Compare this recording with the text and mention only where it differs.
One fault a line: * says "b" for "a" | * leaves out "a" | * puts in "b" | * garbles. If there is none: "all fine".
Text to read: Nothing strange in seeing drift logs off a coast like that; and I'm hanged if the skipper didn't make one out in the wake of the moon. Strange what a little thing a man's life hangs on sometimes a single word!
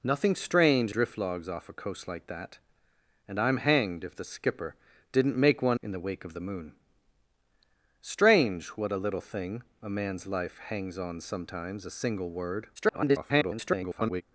* leaves out "in seeing"
* leaves out "out"
* garbles